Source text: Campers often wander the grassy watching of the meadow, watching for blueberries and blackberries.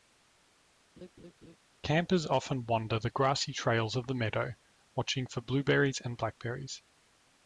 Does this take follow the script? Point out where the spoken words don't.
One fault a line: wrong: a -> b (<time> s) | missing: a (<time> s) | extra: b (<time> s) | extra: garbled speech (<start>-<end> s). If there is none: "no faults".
wrong: watching -> trails (3.5 s)